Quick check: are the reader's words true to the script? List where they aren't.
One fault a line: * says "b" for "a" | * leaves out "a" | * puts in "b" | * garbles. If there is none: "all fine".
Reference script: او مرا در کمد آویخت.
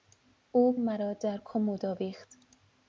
all fine